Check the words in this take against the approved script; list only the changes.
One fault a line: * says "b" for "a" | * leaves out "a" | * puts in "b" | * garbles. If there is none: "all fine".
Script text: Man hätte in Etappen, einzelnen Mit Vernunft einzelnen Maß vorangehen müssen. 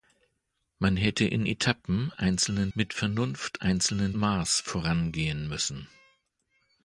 all fine